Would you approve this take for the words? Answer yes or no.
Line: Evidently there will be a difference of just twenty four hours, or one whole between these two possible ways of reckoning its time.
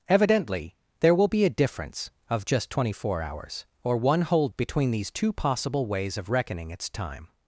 yes